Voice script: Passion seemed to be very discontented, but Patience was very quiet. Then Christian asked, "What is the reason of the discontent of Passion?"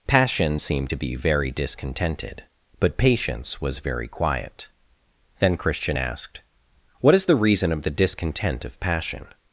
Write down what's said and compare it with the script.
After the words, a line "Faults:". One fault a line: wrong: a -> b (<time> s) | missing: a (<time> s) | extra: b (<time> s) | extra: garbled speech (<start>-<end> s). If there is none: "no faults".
Passion seemed to be very discontented, but Patience was very quiet. Then Christian asked, "What is the reason of the discontent of Passion?"
Faults:
no faults